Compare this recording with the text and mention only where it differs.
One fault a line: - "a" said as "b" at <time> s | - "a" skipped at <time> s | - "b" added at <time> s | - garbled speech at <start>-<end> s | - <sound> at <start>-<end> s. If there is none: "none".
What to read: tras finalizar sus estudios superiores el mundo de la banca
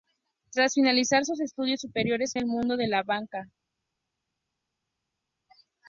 none